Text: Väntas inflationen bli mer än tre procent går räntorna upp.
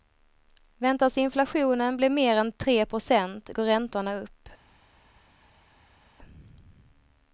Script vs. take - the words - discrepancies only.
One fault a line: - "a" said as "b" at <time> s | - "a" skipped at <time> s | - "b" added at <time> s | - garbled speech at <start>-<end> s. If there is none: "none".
none